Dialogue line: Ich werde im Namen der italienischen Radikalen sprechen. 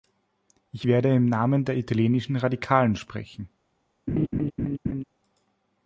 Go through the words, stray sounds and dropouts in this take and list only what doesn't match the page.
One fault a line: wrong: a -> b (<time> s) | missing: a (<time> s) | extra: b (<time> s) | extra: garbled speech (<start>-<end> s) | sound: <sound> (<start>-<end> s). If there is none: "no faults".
sound: laugh (4.1-5.0 s)